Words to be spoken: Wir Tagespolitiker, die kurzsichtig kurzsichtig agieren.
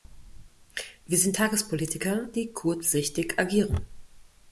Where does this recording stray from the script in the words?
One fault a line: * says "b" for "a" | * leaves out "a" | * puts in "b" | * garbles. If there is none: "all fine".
* puts in "sind"
* leaves out "kurzsichtig"